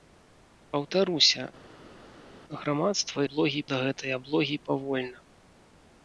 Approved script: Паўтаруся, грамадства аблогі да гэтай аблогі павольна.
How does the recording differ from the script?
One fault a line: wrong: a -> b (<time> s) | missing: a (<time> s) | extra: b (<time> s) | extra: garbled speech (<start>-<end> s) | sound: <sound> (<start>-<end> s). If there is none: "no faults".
no faults